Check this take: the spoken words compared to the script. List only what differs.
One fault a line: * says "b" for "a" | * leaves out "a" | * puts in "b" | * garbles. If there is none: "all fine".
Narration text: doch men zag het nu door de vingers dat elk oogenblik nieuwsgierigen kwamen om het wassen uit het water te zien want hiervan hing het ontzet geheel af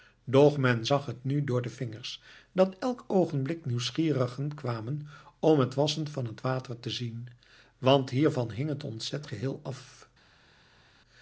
* says "van" for "uit"